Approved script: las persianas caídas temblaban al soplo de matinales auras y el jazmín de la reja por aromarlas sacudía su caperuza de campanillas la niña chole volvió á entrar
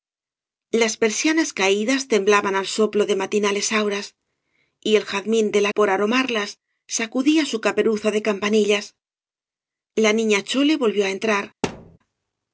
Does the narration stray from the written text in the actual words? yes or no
yes